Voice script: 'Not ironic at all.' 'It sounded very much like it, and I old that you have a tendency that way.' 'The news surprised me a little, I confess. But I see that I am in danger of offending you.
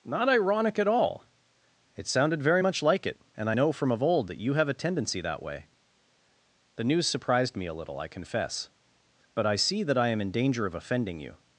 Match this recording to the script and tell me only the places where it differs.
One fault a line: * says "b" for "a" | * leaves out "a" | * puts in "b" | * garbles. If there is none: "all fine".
* puts in "know from of"